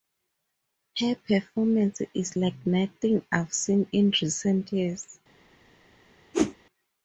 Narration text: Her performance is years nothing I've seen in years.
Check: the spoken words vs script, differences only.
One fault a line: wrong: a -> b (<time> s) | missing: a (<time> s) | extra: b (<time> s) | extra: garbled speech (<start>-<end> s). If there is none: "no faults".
wrong: years -> like (2.4 s)
extra: recent (4.2 s)